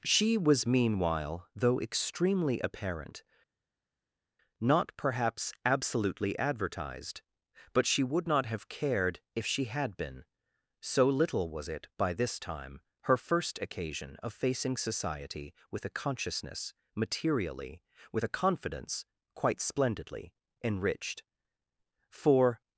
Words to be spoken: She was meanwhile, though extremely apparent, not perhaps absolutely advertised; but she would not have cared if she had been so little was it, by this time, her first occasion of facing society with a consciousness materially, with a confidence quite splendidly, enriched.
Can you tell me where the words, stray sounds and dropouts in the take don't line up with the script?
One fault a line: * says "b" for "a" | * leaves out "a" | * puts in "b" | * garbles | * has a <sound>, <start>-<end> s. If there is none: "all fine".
* puts in "For"